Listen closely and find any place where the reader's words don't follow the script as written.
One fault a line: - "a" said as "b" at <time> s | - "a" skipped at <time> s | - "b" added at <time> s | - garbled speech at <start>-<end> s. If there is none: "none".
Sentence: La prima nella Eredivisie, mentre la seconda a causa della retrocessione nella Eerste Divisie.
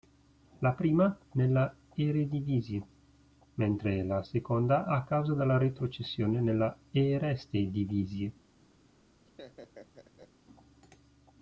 none